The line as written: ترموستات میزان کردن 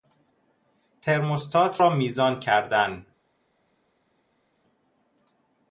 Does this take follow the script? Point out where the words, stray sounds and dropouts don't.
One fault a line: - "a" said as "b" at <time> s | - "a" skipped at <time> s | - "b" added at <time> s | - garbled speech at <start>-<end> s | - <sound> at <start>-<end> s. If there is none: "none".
- "را" added at 1.8 s